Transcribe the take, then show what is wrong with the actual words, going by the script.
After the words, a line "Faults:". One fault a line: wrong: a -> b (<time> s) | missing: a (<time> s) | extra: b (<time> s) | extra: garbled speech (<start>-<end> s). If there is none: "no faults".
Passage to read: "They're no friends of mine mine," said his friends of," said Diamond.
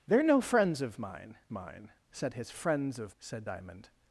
"They're no friends of mine mine," said his friends of," said Diamond.
Faults:
no faults